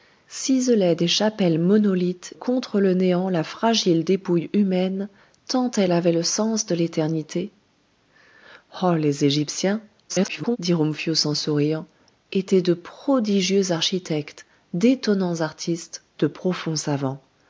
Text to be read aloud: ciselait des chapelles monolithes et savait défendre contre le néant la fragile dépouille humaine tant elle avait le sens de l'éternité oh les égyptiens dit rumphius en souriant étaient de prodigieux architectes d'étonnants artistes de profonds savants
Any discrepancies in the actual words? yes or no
yes